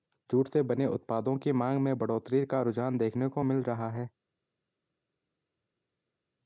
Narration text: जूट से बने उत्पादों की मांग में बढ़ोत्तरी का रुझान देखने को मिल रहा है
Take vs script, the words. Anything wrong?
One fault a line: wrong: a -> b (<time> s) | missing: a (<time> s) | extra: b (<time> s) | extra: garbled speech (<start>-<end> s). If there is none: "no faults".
no faults